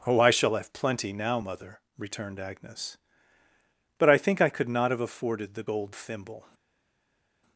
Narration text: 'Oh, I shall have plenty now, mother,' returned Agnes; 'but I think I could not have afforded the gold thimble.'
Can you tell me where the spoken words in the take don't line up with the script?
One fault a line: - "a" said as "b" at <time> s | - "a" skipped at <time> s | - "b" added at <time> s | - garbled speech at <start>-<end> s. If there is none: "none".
none